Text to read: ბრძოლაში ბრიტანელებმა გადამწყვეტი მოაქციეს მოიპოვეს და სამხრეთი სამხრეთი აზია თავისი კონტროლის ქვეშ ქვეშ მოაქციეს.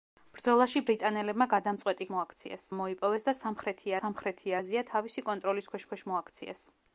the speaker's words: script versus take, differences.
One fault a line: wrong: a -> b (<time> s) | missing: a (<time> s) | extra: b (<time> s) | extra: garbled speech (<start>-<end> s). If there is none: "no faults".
no faults